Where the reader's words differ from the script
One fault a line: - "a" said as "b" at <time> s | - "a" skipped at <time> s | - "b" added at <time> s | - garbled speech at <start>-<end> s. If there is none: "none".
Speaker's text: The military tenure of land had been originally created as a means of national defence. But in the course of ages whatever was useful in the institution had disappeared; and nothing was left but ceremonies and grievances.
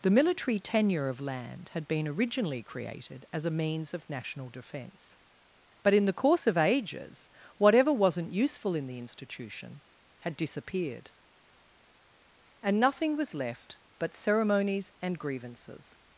- "was" said as "wasn't" at 7.9 s